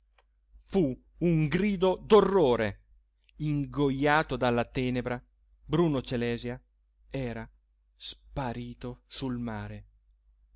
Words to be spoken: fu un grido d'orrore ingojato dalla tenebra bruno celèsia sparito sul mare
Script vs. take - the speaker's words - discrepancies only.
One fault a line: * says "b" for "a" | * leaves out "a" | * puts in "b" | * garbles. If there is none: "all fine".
* puts in "era"